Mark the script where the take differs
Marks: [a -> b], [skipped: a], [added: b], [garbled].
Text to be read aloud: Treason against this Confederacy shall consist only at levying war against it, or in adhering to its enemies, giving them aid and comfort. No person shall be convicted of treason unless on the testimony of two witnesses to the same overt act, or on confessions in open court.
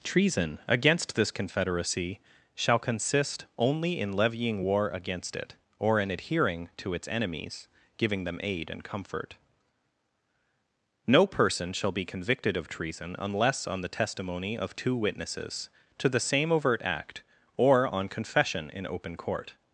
Treason against this Confederacy shall consist only [at -> in] levying war against it, or in adhering to its enemies, giving them aid and comfort. No person shall be convicted of treason unless on the testimony of two witnesses to the same overt act, or on [confessions -> confession] in open court.